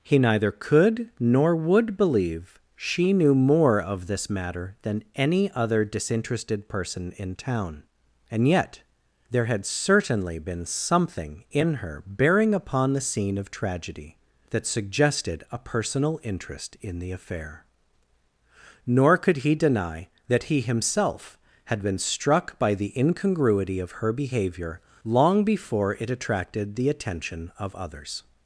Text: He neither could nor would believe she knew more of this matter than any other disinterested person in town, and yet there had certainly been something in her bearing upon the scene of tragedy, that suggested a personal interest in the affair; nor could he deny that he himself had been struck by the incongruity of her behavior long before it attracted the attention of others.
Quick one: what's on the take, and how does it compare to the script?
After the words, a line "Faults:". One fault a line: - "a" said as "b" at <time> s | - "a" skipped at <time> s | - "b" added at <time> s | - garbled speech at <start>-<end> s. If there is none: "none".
He neither could nor would believe she knew more of this matter than any other disinterested person in town, and yet there had certainly been something in her bearing upon the scene of tragedy, that suggested a personal interest in the affair; nor could he deny that he himself had been struck by the incongruity of her behavior long before it attracted the attention of others.
Faults:
none